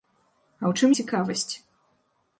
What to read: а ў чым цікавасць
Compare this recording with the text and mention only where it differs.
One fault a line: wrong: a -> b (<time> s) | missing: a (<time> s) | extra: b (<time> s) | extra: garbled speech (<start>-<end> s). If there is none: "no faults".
no faults